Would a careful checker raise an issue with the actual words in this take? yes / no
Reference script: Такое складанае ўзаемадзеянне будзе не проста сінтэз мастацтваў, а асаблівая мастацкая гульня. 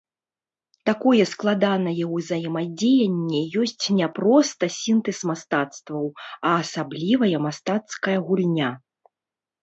yes